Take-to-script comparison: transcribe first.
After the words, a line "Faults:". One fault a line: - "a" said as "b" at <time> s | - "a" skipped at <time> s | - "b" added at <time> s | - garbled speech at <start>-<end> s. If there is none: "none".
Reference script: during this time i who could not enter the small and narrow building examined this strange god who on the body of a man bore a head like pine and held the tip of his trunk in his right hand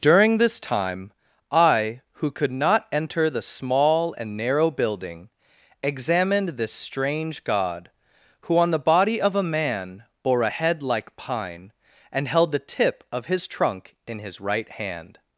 during this time i who could not enter the small and narrow building examined this strange god who on the body of a man bore a head like pine and held the tip of his trunk in his right hand
Faults:
none